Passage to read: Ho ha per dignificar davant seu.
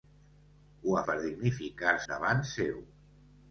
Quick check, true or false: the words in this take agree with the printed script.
true